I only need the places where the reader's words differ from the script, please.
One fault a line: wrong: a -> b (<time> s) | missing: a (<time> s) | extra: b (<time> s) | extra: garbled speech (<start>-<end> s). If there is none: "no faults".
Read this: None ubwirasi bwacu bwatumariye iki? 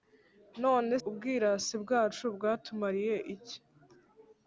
no faults